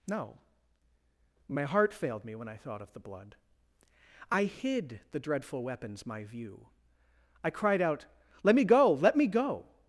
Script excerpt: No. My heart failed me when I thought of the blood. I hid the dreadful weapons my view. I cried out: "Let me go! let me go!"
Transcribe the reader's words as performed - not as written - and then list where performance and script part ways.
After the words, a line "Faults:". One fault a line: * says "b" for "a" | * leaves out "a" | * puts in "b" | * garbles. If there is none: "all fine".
No. My heart failed me when I thought of the blood. I hid the dreadful weapons my view. I cried out: "Let me go! let me go!"
Faults:
all fine